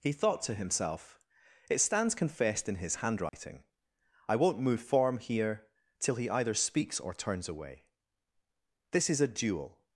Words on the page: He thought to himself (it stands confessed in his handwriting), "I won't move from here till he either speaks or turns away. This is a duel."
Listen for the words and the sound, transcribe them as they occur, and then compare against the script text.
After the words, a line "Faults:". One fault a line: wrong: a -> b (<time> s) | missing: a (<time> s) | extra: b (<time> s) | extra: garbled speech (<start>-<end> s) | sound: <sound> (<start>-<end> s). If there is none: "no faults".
He thought to himself (it stands confessed in his handwriting), "I won't move form here till he either speaks or turns away. This is a duel."
Faults:
sound: dropout (3.3-3.3 s)
wrong: from -> form (4.8 s)